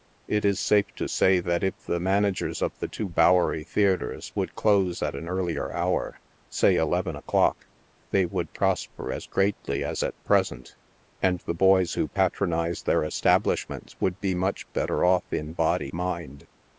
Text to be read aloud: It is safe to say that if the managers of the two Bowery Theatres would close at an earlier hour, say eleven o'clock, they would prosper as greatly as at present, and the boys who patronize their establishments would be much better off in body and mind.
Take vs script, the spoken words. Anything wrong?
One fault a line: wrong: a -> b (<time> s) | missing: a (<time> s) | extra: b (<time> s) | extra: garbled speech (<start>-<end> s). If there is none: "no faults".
missing: and (15.9 s)